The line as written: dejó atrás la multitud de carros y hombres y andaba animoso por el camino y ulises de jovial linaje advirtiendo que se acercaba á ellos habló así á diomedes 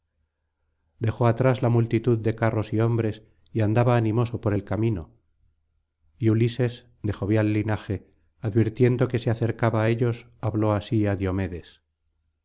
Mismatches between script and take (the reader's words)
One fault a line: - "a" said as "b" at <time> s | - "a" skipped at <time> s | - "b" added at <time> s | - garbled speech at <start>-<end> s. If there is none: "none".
none